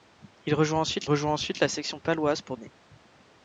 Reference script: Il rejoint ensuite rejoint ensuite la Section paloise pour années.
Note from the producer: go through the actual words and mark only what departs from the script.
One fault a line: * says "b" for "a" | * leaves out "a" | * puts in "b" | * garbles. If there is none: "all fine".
all fine